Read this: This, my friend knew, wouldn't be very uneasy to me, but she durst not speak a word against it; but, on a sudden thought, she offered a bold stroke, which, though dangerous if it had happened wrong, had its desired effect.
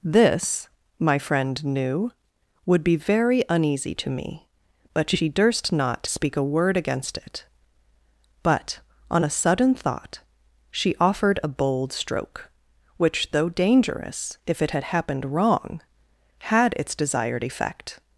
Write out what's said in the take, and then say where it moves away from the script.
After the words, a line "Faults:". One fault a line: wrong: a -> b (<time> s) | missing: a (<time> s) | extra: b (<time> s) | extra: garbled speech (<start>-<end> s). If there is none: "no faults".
This, my friend knew, would be very uneasy to me, but she durst not speak a word against it; but, on a sudden thought, she offered a bold stroke, which, though dangerous if it had happened wrong, had its desired effect.
Faults:
wrong: wouldn't -> would (2.6 s)